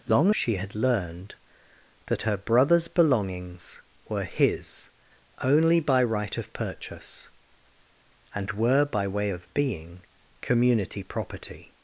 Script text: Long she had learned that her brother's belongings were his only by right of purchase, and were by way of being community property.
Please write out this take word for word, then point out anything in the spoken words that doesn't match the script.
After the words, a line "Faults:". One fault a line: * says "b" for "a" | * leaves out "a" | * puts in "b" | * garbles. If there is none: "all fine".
Long she had learned that her brother's belongings were his only by right of purchase, and were by way of being community property.
Faults:
all fine